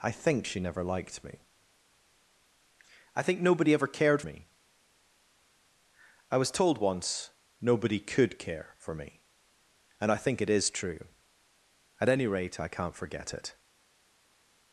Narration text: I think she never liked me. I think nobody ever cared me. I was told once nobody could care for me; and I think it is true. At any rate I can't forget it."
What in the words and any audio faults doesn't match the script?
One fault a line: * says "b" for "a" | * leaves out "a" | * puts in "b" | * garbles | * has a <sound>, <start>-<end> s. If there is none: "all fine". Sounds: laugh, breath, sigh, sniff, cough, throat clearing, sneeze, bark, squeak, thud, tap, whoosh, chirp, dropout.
all fine